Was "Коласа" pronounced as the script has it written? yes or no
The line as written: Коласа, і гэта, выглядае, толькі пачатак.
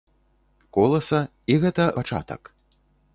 yes